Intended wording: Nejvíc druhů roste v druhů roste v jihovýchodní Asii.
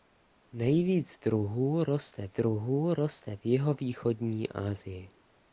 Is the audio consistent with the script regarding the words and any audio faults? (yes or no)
yes